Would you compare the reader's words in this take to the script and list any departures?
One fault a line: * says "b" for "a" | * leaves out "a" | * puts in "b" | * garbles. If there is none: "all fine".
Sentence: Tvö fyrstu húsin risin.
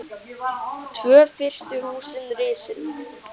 all fine